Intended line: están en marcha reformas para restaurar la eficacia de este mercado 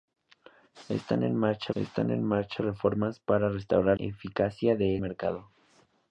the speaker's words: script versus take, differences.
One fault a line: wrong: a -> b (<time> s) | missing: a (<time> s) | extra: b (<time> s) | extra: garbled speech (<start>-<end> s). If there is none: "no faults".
extra: están en marcha (1.7 s)
missing: la (4.0 s)
missing: este (5.0 s)